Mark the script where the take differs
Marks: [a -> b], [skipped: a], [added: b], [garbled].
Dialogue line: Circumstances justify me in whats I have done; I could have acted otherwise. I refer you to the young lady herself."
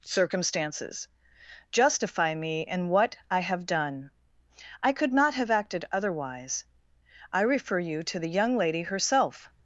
Circumstances justify me in [whats -> what] I have done; I could [added: not] have acted otherwise. I refer you to the young lady herself."